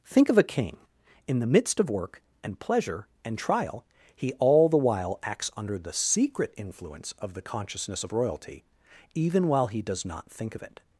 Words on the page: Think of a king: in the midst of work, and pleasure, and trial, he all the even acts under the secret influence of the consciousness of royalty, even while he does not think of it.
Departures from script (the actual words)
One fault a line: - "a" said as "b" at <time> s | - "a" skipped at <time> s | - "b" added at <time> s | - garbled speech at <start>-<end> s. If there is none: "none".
- "even" said as "while" at 4.8 s